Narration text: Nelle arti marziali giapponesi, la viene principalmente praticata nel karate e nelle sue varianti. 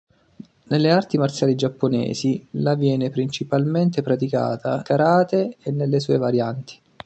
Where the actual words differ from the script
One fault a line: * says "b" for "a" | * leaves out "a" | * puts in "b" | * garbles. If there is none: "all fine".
* leaves out "nel"